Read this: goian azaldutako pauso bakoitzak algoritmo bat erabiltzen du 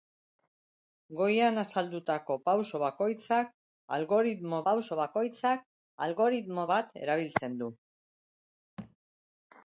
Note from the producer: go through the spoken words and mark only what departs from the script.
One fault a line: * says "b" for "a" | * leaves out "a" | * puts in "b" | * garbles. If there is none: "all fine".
* puts in "pauso bakoitzak algoritmo"